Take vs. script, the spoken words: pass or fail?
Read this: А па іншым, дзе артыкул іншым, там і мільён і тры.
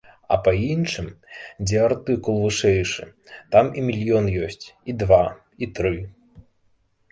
fail